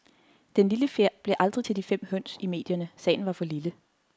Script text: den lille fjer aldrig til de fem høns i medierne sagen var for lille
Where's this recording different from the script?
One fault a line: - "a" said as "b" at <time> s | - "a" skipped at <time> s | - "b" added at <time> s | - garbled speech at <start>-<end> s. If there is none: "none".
- "blev" added at 1.2 s